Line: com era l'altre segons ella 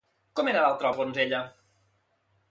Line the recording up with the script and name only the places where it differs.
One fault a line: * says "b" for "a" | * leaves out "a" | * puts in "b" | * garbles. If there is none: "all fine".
all fine